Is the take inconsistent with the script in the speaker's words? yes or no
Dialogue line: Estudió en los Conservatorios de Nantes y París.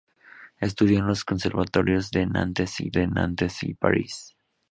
yes